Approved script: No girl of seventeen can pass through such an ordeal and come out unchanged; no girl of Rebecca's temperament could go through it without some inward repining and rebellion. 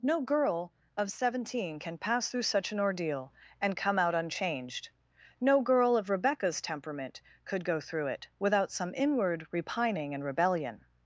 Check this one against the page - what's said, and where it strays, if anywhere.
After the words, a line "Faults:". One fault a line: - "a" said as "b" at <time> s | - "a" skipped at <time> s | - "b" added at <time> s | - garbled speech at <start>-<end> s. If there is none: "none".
No girl of seventeen can pass through such an ordeal and come out unchanged; no girl of Rebecca's temperament could go through it without some inward repining and rebellion.
Faults:
none